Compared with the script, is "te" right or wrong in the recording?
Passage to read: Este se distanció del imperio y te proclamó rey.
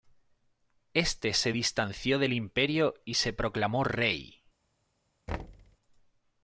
wrong